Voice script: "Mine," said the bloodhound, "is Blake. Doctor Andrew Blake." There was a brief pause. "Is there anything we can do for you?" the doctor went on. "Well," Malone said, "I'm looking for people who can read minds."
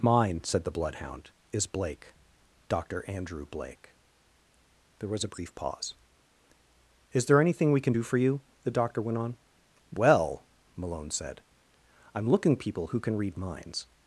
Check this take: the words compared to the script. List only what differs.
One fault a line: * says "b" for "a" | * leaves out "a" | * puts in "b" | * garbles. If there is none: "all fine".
* leaves out "for"